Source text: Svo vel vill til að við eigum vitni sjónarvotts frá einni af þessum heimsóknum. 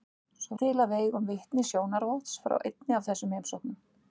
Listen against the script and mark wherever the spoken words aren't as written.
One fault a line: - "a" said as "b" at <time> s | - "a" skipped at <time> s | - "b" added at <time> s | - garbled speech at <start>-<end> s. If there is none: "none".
- "vel vill" skipped at 0.6 s